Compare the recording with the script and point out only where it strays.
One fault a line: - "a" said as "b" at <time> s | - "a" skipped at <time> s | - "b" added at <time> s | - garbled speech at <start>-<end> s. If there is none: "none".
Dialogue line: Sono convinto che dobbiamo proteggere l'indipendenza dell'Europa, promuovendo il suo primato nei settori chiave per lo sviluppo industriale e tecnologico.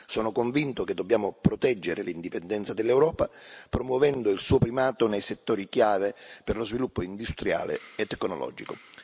none